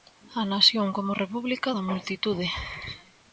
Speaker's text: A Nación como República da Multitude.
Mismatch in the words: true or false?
false